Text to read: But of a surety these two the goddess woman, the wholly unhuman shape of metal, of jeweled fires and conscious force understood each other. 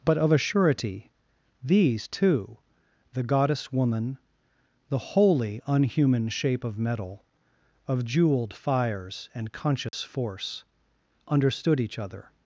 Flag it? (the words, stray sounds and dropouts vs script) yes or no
yes